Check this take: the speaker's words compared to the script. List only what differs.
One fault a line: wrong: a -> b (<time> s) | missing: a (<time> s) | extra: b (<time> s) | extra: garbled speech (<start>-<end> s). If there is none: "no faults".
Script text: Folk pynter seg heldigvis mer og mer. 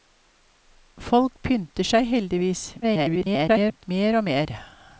extra: garbled speech (2.8-3.8 s)